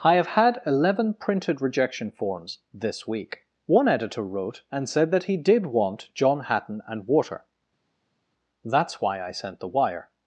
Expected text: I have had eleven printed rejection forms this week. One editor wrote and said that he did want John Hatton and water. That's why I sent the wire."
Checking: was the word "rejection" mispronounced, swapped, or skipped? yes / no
no